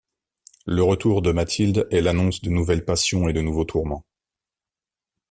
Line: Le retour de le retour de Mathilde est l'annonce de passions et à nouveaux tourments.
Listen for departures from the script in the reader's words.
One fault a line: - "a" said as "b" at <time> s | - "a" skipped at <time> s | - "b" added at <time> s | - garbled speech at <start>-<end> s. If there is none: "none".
- "le retour de" skipped at 1.3 s
- "nouvelles" added at 2.5 s
- "à" said as "de" at 3.3 s